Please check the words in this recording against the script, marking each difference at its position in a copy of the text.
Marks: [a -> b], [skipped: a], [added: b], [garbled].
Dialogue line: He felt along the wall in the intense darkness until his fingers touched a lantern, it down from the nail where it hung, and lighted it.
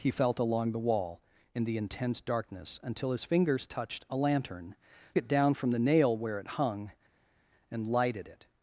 He felt along the wall in the intense darkness until his fingers touched a lantern, it down from the nail where it hung, and lighted it.